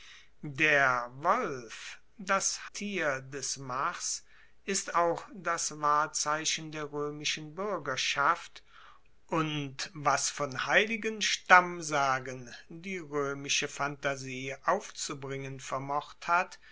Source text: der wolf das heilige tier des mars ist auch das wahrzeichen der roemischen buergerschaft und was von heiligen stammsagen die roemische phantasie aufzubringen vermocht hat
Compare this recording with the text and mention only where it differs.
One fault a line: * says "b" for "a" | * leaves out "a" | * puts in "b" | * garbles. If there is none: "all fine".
* leaves out "heilige"